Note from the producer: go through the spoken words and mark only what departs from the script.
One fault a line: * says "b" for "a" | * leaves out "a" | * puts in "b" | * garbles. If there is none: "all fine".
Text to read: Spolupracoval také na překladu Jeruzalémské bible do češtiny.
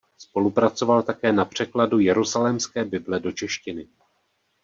all fine